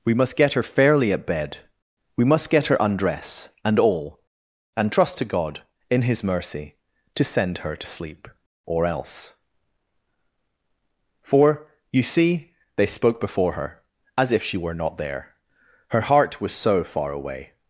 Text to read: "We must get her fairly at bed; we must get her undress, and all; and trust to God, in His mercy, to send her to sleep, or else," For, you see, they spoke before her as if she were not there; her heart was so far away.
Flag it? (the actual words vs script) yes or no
no